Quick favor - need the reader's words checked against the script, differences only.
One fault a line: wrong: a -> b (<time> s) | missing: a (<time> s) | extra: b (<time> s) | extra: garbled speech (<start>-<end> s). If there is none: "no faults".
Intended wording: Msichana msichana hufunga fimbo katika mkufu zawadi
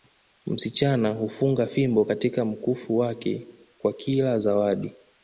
missing: msichana (1.1 s)
extra: wake kwa kila (3.0 s)